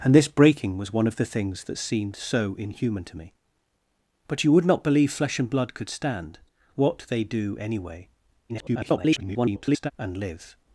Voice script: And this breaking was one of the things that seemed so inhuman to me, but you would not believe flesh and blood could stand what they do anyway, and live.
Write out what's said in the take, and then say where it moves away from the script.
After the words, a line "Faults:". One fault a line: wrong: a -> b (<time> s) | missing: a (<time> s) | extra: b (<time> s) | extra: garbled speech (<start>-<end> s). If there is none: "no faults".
And this breaking was one of the things that seemed so inhuman to me, but you would not believe flesh and blood could stand what they do anyway, [garbled] and live.
Faults:
extra: garbled speech (8.5-9.9 s)